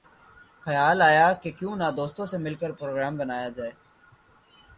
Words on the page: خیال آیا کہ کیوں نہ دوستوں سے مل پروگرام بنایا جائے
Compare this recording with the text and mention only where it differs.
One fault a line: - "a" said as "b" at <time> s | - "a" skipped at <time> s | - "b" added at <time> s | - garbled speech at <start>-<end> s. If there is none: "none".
- "کر" added at 2.6 s